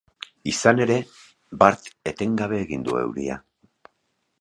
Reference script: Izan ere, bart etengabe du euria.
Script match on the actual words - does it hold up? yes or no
no